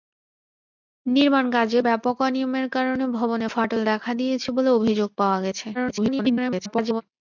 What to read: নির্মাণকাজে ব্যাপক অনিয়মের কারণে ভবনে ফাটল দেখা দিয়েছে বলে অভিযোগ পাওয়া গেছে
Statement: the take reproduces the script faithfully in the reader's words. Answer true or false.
false